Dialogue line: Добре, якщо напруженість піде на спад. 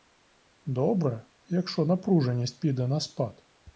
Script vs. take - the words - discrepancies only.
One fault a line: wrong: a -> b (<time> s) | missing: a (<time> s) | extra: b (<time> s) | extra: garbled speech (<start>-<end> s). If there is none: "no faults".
no faults